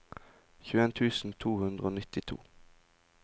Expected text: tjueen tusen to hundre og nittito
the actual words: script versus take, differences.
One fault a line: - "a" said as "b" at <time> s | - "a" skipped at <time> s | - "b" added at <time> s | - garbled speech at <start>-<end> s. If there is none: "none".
none